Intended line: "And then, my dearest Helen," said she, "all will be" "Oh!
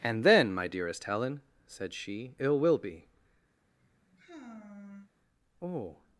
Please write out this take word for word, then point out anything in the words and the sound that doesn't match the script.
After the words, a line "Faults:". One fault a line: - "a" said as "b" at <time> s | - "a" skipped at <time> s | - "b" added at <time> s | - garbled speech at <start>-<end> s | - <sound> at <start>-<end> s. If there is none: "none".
"And then, my dearest Helen," said she, "ill will be" "Oh!
Faults:
- "all" said as "ill" at 2.4 s
- sigh at 3.5-5.1 s